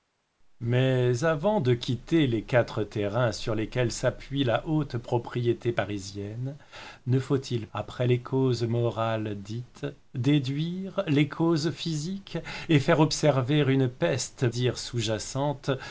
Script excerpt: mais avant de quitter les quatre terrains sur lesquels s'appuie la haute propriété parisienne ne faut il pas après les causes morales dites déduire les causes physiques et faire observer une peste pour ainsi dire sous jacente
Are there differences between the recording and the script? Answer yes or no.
yes